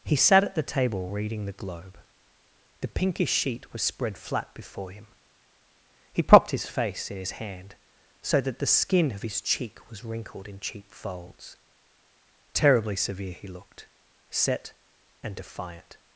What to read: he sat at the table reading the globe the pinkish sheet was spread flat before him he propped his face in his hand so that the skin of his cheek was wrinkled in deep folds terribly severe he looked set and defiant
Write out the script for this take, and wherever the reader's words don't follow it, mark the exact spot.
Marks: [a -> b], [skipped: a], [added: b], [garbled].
he sat at the table reading the globe the pinkish sheet was spread flat before him he propped his face in his hand so that the skin of his cheek was wrinkled in [deep -> cheap] folds terribly severe he looked set and defiant